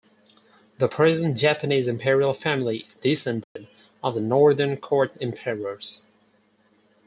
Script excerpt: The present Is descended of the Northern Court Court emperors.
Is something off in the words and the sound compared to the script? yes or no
yes